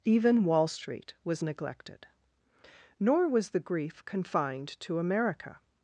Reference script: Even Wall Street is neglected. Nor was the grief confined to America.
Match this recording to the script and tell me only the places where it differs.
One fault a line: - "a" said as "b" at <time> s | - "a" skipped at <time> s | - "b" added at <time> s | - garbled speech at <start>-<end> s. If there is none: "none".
- "is" said as "was" at 1.2 s